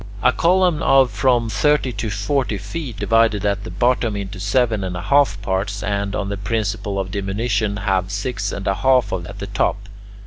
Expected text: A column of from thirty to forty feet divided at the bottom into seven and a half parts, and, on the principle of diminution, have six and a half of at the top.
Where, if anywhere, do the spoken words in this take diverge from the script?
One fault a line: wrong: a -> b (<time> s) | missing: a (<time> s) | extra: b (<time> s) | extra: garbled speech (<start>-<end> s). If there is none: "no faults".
no faults